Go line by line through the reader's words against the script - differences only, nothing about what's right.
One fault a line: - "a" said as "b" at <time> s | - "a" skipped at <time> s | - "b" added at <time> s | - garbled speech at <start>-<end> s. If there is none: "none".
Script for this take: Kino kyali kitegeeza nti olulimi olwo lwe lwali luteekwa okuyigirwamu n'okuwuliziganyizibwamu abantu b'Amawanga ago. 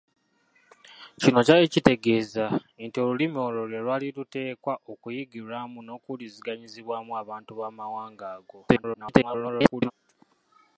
- garbled speech at 8.7-9.9 s